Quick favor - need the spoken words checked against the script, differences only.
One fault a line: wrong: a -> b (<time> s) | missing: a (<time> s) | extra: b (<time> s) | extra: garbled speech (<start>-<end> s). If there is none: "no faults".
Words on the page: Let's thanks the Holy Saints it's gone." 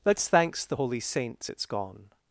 no faults